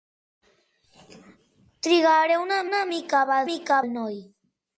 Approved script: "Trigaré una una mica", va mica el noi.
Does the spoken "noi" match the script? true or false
true